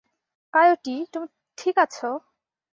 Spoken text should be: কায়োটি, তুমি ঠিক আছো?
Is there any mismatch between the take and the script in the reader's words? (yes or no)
no